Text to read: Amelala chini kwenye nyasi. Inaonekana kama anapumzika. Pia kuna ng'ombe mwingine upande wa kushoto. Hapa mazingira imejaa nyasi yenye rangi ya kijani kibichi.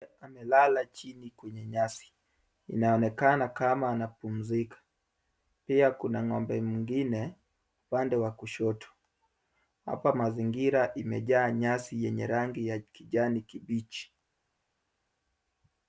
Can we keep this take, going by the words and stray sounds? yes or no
yes